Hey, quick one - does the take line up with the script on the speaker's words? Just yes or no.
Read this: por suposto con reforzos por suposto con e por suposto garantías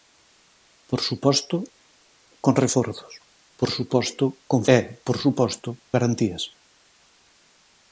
yes